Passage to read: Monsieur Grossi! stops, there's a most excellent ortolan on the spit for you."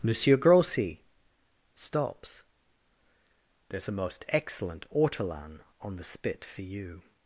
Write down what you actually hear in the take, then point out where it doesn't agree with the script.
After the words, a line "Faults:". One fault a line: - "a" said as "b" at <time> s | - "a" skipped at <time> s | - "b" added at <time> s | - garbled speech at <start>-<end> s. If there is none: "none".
Monsieur Grossi! stops, there's a most excellent ortolan on the spit for you."
Faults:
none